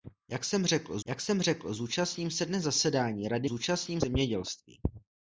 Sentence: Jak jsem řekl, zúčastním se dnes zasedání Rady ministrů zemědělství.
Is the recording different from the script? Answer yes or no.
yes